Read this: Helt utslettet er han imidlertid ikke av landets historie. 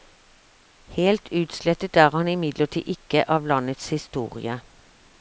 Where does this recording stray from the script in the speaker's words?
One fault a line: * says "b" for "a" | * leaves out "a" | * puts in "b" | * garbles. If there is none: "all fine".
all fine